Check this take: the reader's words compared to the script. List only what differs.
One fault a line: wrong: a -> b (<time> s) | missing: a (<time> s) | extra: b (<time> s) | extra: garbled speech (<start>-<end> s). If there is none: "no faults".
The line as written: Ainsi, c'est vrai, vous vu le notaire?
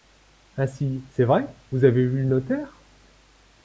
extra: avez (1.9 s)